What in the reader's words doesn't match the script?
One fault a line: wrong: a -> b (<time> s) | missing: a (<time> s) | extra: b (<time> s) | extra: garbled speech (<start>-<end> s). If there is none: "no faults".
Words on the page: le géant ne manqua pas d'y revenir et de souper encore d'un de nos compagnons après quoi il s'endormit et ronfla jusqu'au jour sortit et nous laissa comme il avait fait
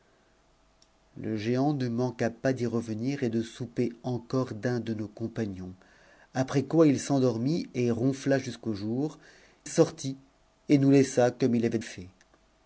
no faults